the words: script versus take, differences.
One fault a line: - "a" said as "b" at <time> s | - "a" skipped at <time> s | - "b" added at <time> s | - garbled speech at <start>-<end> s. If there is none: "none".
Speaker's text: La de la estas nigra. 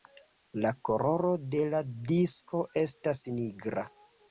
- "koloro" added at 0.9 s
- "disko" added at 2.1 s